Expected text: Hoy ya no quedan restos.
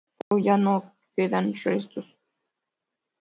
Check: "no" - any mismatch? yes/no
no